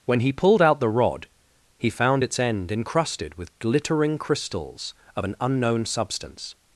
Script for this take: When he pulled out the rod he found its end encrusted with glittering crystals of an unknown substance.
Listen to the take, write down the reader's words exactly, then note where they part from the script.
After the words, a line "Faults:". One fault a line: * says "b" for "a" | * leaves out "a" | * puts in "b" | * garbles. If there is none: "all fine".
When he pulled out the rod he found its end encrusted with glittering crystals of an unknown substance.
Faults:
all fine